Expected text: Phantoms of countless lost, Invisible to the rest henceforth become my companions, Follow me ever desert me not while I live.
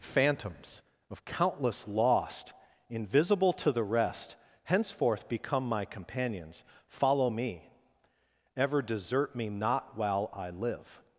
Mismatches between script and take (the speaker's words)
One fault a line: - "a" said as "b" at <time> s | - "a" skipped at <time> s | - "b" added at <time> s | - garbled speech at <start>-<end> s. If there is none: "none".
none